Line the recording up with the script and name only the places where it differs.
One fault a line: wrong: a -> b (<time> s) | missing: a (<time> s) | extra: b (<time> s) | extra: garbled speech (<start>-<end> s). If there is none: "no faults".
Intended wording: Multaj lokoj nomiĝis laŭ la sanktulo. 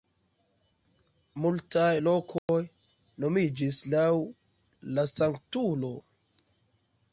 no faults